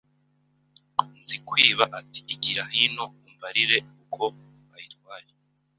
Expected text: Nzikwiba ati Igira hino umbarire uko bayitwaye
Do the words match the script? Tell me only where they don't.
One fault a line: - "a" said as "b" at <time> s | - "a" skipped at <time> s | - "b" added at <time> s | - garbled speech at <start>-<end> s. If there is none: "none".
none